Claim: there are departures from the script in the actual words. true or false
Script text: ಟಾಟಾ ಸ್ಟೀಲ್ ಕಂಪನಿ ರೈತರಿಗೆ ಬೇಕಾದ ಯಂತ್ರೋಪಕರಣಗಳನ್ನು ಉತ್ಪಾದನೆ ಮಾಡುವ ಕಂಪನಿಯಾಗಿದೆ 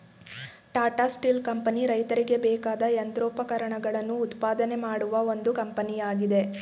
true